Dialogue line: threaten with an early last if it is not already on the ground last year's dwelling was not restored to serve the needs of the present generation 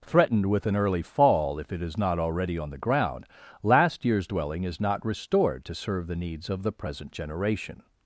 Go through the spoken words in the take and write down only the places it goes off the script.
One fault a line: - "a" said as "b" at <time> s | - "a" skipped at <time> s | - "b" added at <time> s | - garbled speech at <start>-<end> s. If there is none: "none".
- "threaten" said as "threatened" at 0.0 s
- "last" said as "fall" at 1.0 s
- "was" said as "is" at 4.6 s